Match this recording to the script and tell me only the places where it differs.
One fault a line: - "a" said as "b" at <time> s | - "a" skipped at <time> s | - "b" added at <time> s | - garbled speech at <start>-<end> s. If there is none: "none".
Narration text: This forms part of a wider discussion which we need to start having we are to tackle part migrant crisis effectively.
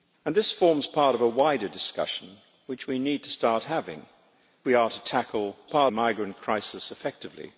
none